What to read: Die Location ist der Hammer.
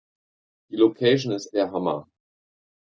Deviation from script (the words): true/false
false